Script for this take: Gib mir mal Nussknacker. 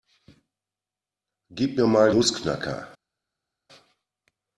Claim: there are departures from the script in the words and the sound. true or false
false